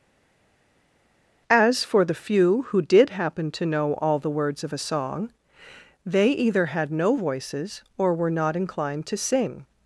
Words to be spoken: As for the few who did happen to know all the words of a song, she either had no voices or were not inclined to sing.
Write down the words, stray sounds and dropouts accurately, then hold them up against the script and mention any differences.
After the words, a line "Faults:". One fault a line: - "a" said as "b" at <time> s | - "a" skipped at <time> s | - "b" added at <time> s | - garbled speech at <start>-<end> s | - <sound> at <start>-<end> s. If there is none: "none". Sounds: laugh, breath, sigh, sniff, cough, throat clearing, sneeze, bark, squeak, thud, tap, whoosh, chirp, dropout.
As for the few who did happen to know all the words of a song, they either had no voices or were not inclined to sing.
Faults:
- "she" said as "they" at 6.0 s